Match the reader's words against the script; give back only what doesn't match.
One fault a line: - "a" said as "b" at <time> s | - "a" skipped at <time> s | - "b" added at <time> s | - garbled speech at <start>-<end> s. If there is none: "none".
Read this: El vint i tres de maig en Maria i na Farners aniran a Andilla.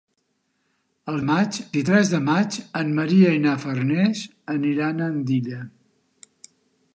- "vint" said as "maig" at 1.3 s